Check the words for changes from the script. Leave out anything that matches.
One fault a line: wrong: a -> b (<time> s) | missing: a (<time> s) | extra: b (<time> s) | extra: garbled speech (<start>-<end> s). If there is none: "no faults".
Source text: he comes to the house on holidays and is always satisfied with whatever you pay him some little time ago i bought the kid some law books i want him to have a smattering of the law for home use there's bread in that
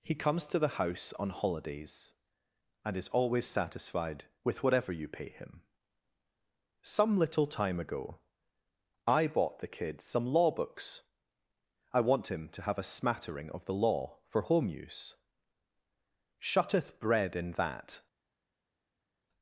wrong: there's -> shutteth (16.4 s)